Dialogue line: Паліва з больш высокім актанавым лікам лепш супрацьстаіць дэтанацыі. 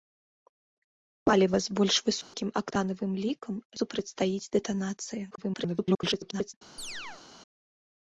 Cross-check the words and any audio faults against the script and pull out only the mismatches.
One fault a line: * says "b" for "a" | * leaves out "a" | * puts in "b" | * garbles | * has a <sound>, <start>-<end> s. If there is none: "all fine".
* has a dropout, 2.2-2.3 s
* leaves out "лепш"
* garbles
* has a chirp, 6.8-7.2 s